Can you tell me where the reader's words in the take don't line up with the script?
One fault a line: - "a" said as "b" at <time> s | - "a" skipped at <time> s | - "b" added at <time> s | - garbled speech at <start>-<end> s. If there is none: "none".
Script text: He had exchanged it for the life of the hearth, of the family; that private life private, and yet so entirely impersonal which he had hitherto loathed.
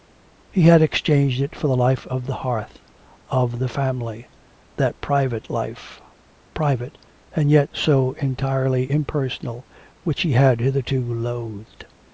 none